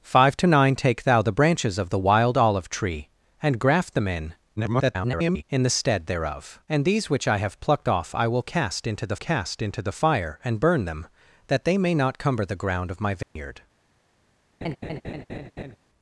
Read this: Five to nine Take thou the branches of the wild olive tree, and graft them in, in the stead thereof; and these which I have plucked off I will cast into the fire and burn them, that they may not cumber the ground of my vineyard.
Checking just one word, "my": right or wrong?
right